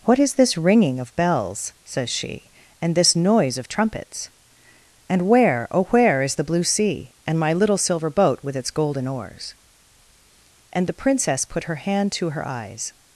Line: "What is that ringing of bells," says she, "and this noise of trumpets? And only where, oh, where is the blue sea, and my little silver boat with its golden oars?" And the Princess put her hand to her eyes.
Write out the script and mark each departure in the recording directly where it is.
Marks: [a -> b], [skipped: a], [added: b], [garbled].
"What is [that -> this] ringing of bells," says she, "and this noise of trumpets? And [skipped: only] where, oh, where is the blue sea, and my little silver boat with its golden oars?" And the Princess put her hand to her eyes.